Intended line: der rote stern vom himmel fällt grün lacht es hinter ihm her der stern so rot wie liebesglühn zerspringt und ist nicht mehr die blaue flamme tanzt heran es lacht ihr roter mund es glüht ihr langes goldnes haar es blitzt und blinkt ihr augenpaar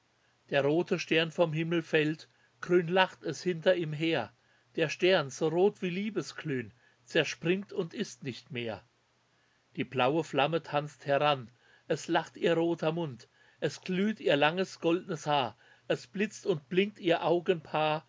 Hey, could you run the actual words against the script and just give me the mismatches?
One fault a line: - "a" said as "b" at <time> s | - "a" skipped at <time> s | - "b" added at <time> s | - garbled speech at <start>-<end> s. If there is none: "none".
none